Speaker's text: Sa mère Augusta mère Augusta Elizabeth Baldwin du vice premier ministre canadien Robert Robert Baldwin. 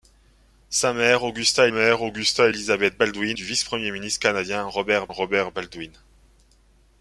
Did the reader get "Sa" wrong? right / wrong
right